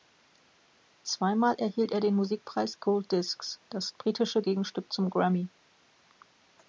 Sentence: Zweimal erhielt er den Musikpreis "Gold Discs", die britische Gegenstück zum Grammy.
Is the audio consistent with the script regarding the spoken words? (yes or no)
no